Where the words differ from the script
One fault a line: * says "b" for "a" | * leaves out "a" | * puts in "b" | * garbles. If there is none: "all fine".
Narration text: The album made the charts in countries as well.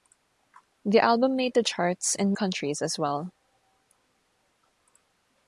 all fine